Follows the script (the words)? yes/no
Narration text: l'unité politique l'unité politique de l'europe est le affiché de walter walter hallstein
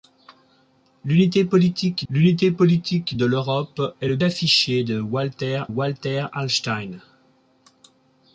yes